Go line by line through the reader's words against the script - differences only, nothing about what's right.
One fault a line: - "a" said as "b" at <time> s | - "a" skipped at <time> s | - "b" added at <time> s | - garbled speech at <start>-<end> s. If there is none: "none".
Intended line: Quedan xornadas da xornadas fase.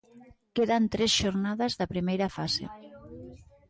- "tres" added at 0.9 s
- "xornadas" said as "primeira" at 1.9 s